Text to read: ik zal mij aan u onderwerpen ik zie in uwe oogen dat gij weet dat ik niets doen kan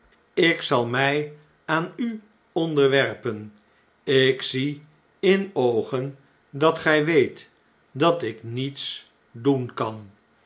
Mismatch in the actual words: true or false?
true